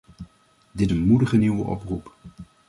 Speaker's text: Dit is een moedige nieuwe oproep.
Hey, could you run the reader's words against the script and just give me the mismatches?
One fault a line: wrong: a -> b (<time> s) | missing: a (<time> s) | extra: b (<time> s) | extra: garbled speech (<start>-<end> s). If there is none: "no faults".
missing: is (0.9 s)